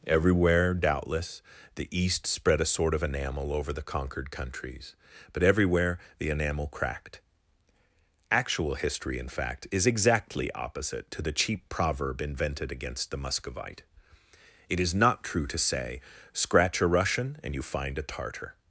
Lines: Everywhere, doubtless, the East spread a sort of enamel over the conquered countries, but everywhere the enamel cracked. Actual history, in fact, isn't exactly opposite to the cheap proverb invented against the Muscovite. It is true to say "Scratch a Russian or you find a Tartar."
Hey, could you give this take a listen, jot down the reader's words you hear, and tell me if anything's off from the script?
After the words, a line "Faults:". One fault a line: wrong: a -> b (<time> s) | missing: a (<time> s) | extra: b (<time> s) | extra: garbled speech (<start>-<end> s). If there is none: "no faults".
Everywhere, doubtless, the East spread a sort of enamel over the conquered countries, but everywhere the enamel cracked. Actual history, in fact, is exactly opposite to the cheap proverb invented against the Muscovite. It is not true to say "Scratch a Russian and you find a Tartar."
Faults:
wrong: isn't -> is (9.7 s)
extra: not (14.9 s)
wrong: or -> and (17.4 s)